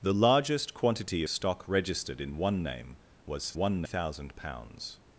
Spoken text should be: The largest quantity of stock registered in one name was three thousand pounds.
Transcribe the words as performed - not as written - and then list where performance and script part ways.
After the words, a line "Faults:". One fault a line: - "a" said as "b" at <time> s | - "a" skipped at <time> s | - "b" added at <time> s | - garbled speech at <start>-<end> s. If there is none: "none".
The largest quantity stock registered in one name was one thousand pounds.
Faults:
- "of" skipped at 1.2 s
- "three" said as "one" at 3.5 s